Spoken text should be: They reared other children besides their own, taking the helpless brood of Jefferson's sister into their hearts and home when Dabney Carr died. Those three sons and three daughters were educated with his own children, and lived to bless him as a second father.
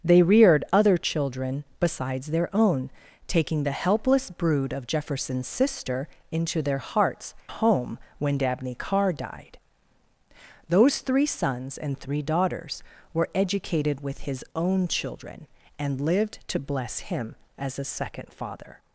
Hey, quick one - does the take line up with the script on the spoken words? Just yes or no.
no